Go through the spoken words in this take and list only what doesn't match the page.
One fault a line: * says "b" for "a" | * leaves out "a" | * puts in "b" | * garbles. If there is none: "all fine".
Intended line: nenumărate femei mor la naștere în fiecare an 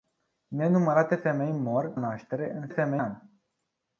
* leaves out "la"
* says "femei" for "fiecare"